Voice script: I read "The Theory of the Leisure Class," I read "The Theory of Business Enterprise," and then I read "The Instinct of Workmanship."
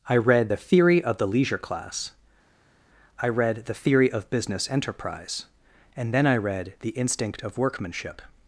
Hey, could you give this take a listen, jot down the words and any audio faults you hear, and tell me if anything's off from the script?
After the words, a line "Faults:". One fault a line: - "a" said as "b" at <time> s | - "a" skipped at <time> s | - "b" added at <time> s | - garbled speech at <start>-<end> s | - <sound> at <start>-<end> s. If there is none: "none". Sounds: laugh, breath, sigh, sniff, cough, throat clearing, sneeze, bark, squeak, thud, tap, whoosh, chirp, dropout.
I read "The Theory of the Leisure Class," I read "The Theory of Business Enterprise," and then I read "The Instinct of Workmanship."
Faults:
none